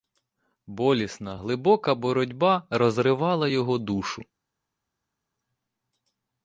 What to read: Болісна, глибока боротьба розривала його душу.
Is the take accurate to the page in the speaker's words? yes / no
yes